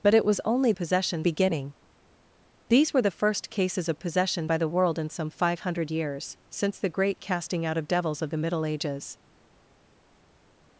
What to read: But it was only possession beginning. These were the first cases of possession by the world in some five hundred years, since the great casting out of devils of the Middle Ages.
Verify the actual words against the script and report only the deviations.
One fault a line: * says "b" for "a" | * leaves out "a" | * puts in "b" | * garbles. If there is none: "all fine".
all fine